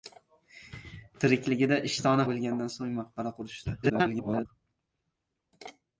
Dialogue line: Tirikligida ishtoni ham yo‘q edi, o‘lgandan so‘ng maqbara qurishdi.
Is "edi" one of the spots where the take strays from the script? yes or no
yes